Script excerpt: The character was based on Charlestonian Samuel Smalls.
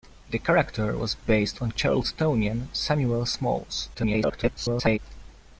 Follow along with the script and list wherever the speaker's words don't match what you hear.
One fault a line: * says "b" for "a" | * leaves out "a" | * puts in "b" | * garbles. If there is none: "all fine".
* garbles